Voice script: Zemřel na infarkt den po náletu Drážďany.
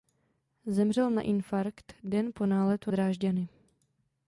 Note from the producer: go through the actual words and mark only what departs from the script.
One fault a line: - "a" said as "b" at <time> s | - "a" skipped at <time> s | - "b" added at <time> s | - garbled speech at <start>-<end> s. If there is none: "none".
none